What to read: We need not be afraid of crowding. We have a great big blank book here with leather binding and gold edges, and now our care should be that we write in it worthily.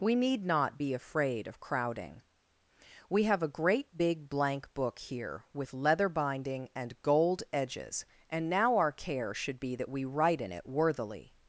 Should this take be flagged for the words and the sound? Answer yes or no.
no